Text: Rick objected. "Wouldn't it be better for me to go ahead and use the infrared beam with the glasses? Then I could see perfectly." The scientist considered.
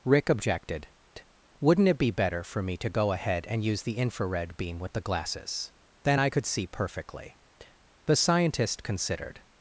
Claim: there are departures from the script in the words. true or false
false